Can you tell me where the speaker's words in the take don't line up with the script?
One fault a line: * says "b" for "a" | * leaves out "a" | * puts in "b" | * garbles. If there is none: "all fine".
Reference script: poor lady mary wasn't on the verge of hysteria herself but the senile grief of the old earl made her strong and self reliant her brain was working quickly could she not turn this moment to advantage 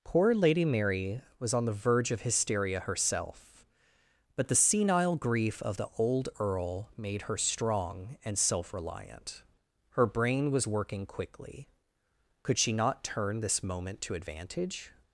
* says "was" for "wasn't"